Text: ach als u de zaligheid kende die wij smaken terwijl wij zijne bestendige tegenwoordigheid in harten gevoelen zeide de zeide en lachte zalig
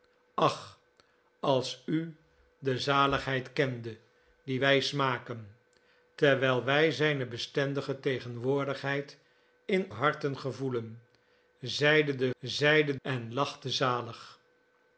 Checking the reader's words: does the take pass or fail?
pass